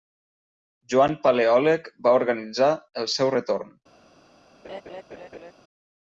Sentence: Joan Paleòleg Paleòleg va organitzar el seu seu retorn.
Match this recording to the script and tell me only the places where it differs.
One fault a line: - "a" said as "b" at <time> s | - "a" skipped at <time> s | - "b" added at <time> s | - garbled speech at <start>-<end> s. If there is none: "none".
- "Paleòleg" skipped at 1.9 s
- "seu" skipped at 3.4 s